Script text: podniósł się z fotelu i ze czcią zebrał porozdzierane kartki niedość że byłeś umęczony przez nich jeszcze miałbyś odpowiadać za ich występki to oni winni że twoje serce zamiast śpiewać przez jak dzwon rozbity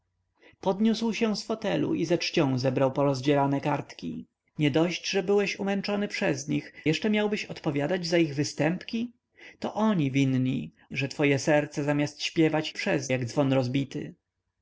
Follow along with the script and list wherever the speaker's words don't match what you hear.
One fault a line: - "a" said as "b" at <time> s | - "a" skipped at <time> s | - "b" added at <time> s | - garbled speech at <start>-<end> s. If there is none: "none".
none